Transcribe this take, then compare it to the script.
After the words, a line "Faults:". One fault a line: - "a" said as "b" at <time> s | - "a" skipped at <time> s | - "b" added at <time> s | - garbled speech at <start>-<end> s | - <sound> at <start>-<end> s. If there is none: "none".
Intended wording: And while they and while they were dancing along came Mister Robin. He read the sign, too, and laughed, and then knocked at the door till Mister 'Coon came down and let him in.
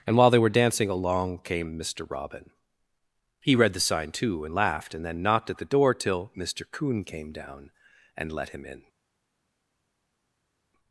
And while they were dancing along came Mister Robin. He read the sign, too, and laughed, and then knocked at the door till Mister 'Coon came down and let him in.
Faults:
- "and while they" skipped at 0.4 s